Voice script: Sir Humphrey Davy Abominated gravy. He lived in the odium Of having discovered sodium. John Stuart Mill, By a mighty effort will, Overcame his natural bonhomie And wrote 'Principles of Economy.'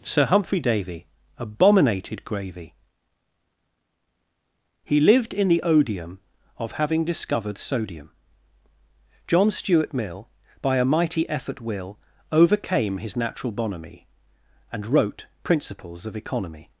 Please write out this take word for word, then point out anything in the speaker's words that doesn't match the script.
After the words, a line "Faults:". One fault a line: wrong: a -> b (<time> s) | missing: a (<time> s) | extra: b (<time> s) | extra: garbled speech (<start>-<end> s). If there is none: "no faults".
Sir Humphrey Davy Abominated gravy. He lived in the odium Of having discovered sodium. John Stuart Mill, By a mighty effort will, Overcame his natural bonhomie And wrote 'Principles of Economy.'
Faults:
no faults